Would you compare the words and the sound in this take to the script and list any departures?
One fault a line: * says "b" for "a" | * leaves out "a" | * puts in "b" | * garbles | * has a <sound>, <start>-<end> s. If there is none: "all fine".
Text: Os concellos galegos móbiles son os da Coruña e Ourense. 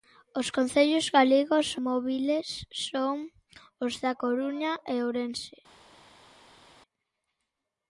all fine